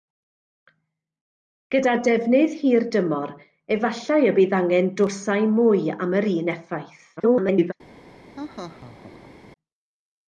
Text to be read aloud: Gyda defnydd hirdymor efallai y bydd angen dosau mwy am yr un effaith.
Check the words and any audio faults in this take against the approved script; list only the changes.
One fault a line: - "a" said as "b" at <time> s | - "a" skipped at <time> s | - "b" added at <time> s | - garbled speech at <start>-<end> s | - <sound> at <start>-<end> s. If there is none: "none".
- garbled speech at 7.2-7.7 s
- laugh at 8.3-9.3 s